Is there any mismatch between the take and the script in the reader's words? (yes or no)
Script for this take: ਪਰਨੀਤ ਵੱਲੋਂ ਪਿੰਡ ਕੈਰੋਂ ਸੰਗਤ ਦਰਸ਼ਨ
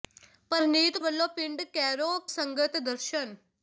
no